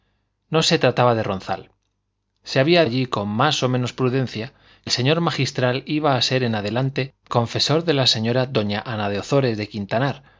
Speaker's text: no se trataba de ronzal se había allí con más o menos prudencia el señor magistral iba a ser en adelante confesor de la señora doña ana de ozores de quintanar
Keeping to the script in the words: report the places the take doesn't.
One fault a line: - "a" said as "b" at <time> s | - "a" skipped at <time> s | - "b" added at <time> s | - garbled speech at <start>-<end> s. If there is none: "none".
none